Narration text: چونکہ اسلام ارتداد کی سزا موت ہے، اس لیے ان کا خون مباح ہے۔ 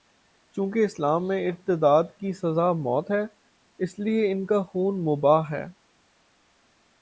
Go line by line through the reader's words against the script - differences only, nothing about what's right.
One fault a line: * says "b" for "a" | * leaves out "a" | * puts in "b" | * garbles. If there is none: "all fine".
* puts in "میں"